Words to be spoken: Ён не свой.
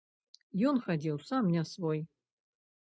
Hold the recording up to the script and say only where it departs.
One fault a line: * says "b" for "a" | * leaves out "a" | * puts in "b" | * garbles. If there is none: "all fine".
* puts in "хадзіў сам"